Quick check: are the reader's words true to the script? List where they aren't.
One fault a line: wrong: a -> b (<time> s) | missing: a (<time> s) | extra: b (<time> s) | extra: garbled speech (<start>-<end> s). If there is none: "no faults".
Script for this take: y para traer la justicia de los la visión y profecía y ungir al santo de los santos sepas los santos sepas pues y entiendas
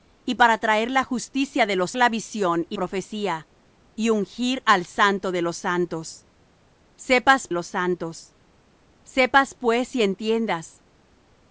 no faults